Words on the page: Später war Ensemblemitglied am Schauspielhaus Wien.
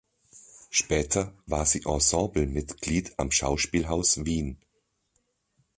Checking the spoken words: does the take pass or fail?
fail